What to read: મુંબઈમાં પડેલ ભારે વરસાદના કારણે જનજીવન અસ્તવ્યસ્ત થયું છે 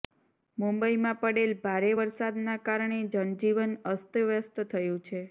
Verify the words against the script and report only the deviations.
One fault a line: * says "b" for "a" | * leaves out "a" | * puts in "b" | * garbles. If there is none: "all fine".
all fine